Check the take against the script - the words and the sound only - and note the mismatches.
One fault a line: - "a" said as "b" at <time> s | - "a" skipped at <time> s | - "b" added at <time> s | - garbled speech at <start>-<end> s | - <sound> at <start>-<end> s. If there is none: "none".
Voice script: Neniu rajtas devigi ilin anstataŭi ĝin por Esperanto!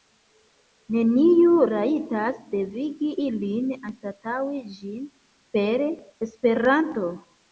- "por" said as "per" at 5.6 s